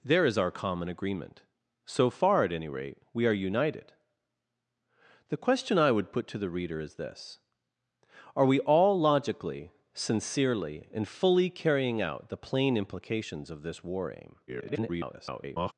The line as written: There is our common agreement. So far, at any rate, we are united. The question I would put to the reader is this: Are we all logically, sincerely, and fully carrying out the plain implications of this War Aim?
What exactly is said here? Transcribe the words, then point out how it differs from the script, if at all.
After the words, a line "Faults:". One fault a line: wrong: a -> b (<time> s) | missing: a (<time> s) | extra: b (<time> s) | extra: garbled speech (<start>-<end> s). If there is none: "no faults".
There is our common agreement. So far, at any rate, we are united. The question I would put to the reader is this: Are we all logically, sincerely, and fully carrying out the plain implications of this War Aim? [garbled]
Faults:
extra: garbled speech (14.5-15.7 s)